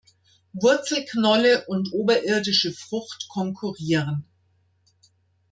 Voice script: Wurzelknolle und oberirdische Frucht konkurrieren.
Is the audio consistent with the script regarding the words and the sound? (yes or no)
yes